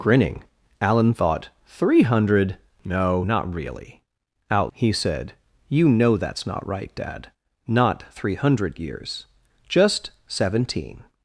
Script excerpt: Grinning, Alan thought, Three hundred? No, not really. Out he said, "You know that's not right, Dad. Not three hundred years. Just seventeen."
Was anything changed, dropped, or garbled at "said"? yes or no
no